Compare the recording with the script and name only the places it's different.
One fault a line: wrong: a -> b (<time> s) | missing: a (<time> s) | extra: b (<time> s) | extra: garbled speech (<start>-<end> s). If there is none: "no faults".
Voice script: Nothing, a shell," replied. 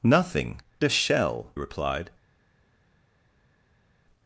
no faults